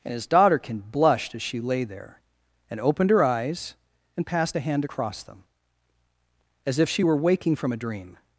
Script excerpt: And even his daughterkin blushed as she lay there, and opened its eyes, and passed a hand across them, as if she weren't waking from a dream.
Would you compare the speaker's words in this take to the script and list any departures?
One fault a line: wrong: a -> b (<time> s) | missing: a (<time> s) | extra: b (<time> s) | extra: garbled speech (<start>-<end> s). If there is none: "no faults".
missing: even (0.1 s)
wrong: its -> her (3.1 s)
wrong: weren't -> were (7.0 s)